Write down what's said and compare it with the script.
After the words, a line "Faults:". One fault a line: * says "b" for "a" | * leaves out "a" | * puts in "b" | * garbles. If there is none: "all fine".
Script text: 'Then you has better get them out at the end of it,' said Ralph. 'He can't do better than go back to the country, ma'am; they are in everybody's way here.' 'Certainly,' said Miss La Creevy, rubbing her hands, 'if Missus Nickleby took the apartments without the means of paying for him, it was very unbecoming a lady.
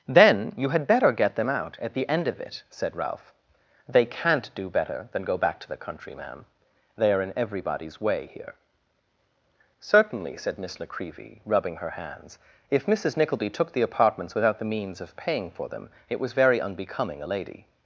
'Then you had better get them out at the end of it,' said Ralph. 'They can't do better than go back to the country, ma'am; they are in everybody's way here.' 'Certainly,' said Miss La Creevy, rubbing her hands, 'if Missus Nickleby took the apartments without the means of paying for them, it was very unbecoming a lady.
Faults:
* says "had" for "has"
* says "They" for "He"
* says "them" for "him"